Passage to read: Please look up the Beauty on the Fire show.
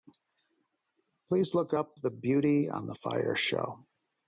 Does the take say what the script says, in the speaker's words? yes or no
yes